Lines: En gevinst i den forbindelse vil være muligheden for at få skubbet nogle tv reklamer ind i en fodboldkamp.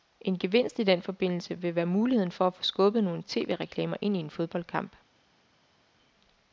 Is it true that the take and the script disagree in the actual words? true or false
false